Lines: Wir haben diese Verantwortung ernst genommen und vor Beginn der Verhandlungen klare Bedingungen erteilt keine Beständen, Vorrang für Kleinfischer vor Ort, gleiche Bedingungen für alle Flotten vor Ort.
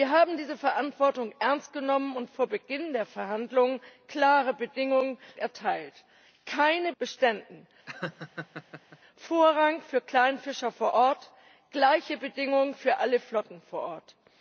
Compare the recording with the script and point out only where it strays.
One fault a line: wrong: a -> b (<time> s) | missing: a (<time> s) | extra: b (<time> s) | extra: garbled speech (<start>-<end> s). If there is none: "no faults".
no faults